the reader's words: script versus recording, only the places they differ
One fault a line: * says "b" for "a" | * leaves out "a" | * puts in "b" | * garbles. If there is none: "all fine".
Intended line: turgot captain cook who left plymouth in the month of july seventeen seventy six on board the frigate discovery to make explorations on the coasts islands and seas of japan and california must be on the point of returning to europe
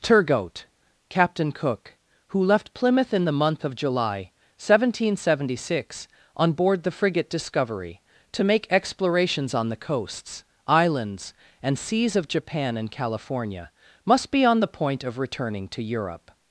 all fine